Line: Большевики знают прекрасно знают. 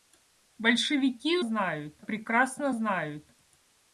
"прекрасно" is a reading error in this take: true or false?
false